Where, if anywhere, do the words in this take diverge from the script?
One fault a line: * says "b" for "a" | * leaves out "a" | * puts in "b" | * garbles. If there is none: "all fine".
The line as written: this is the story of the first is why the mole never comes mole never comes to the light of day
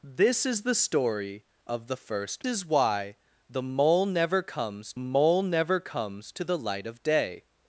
all fine